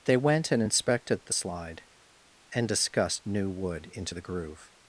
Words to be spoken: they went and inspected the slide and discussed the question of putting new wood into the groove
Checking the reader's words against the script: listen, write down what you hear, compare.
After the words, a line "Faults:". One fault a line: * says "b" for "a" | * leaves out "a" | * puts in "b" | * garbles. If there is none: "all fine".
they went and inspected the slide and discussed new wood into the groove
Faults:
* leaves out "the question of putting"